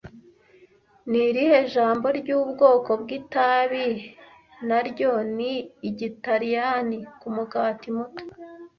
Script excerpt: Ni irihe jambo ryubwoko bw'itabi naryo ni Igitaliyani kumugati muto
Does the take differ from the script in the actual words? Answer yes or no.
no